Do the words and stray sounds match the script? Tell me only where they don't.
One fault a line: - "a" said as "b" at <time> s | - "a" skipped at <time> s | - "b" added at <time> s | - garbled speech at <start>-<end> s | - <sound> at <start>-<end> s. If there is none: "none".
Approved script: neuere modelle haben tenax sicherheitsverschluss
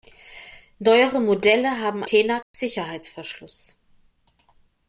- dropout at 2.4-2.5 s